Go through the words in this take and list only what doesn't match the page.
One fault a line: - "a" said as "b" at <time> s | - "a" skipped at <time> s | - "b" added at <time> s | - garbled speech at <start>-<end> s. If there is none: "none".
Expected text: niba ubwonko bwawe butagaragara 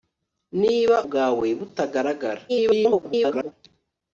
- "ubwonko" skipped at 1.0 s
- garbled speech at 2.5-3.5 s